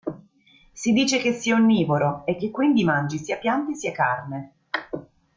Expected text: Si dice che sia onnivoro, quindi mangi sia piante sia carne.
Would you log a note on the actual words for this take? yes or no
yes